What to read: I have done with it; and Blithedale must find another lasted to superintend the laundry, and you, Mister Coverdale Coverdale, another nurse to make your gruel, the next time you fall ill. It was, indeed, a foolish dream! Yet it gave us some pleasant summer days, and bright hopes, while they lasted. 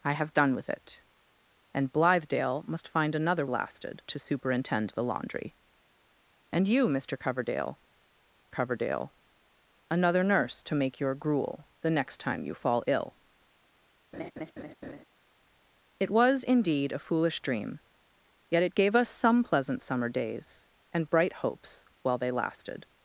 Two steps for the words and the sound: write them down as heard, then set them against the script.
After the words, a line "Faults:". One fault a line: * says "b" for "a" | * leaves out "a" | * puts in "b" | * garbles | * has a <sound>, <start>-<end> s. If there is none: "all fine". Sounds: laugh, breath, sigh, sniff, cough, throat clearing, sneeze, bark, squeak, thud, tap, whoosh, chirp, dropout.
I have done with it; and Blithedale must find another lasted to superintend the laundry, and you, Mister Coverdale Coverdale, another nurse to make your gruel, the next time you fall ill. It was, indeed, a foolish dream! Yet it gave us some pleasant summer days, and bright hopes, while they lasted.
Faults:
* has a laugh, 14.1-15.0 s